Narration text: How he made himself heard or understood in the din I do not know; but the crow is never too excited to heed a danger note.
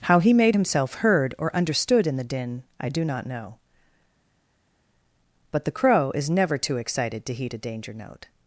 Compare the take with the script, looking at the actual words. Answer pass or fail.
pass